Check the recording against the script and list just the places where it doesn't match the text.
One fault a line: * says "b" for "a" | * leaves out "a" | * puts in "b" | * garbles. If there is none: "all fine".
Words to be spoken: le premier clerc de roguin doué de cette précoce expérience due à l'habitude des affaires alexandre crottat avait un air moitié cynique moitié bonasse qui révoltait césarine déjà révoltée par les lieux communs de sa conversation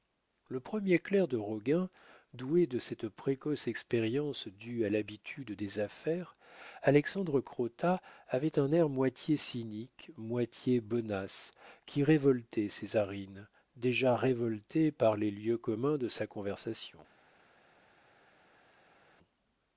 all fine